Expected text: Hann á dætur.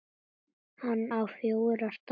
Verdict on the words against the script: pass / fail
fail